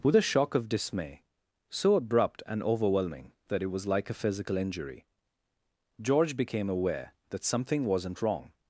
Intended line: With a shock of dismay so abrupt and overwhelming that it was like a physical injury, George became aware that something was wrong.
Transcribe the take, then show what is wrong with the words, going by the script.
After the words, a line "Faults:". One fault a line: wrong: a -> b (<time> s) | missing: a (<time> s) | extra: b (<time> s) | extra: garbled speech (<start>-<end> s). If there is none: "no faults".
With a shock of dismay so abrupt and overwhelming that it was like a physical injury, George became aware that something wasn't wrong.
Faults:
wrong: was -> wasn't (7.9 s)